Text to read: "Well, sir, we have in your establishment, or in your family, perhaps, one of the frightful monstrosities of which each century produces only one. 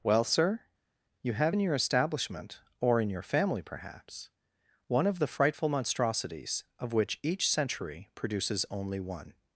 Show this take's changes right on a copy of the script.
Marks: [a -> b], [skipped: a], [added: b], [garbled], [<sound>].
"Well, sir, [we -> you] have in your establishment, or in your family, perhaps, one of the frightful monstrosities of which each century produces only one.